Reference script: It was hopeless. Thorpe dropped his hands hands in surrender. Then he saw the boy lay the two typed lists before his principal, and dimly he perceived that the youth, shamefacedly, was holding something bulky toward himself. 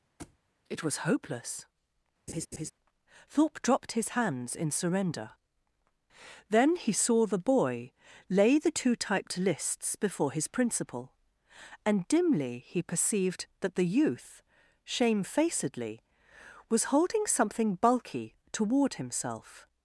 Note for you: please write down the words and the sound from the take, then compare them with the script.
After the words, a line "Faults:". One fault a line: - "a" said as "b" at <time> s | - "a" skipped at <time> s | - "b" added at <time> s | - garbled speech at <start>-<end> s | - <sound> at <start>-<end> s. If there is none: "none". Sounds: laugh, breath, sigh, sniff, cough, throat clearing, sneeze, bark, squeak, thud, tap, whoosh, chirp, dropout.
It was hopeless. Thorpe dropped his hands in surrender. Then he saw the boy lay the two typed lists before his principal, and dimly he perceived that the youth, shamefacedly, was holding something bulky toward himself.
Faults:
- thud at 0.2-0.4 s
- laugh at 2.3-2.7 s
- "hands" skipped at 4.6 s